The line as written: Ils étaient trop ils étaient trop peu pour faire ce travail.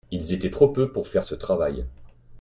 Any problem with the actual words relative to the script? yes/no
yes